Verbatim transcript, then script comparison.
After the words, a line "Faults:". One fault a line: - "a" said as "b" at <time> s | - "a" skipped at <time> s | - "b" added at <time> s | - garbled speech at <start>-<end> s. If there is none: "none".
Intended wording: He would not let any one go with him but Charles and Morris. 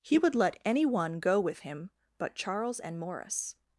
He would let any one go with him but Charles and Morris.
Faults:
- "not" skipped at 0.3 s